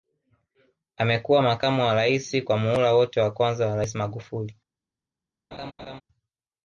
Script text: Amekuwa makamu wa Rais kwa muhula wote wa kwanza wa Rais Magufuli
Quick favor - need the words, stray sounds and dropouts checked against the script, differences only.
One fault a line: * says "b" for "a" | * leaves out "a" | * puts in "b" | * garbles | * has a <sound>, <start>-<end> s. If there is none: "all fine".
* has a laugh, 5.5-6.0 s